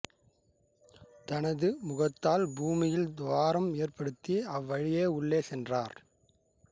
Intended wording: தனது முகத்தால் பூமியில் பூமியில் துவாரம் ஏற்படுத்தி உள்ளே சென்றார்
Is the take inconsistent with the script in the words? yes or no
yes